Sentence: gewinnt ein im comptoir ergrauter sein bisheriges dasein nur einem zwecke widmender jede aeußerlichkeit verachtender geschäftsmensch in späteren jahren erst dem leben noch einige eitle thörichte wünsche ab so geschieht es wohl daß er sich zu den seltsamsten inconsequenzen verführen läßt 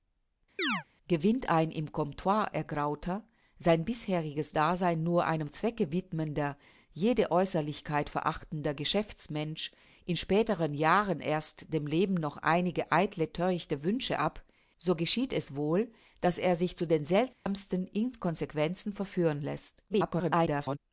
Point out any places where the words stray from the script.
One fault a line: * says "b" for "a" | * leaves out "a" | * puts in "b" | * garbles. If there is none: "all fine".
* garbles